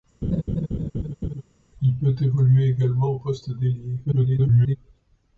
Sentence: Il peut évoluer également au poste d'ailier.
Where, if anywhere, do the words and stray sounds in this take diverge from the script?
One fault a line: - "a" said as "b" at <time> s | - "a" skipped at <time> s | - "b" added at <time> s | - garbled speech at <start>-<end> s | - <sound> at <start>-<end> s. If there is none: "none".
- laugh at 0.2-1.4 s
- garbled speech at 4.0-4.8 s